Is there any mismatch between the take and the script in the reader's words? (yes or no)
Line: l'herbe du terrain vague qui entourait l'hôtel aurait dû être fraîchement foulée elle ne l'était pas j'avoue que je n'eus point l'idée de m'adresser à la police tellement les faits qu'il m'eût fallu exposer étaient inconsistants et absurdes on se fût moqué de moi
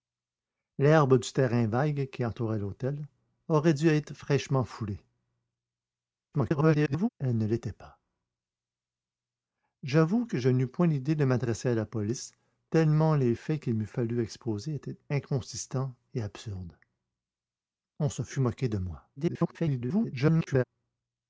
yes